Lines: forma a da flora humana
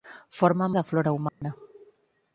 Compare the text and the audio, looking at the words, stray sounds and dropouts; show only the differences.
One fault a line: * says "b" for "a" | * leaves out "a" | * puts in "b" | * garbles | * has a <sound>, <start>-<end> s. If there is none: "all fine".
* has a dropout, 1.3-1.4 s